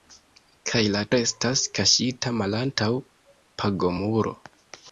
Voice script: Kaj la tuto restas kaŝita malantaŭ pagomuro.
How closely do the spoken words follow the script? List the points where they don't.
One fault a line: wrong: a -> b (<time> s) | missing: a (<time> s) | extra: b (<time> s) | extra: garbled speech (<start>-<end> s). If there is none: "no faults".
missing: tuto (1.0 s)